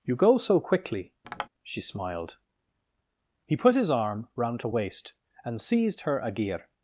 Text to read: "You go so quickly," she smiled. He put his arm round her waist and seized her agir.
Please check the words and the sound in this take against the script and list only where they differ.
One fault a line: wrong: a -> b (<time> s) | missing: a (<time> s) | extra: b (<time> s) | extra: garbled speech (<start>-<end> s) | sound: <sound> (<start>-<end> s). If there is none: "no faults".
sound: tap (1.2-1.5 s)